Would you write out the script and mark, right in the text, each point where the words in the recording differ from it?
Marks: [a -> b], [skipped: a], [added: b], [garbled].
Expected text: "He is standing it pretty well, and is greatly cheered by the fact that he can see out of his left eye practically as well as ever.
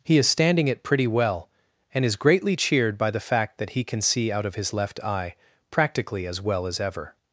"He is standing it pretty well, and is greatly cheered by the fact that he can see out of his left eye practically as well as ever.